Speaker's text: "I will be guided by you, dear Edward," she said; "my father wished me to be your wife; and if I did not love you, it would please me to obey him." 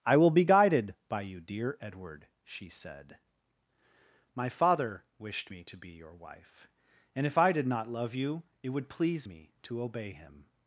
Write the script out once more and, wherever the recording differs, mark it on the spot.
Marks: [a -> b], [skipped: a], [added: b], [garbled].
"I will be guided by you, dear Edward," she said; "my father wished me to be your wife; and if I did not love you, it would please me to obey him."